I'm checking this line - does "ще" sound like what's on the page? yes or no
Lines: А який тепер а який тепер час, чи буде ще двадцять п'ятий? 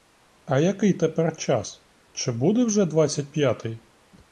no